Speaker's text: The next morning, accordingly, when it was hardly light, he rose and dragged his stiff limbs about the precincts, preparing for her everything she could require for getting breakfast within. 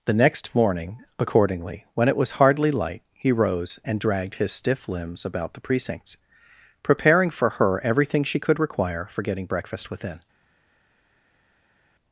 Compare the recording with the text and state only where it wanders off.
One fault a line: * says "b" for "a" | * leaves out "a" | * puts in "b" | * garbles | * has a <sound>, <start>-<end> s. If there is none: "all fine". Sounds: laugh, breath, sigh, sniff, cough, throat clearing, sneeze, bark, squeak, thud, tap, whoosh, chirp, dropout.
all fine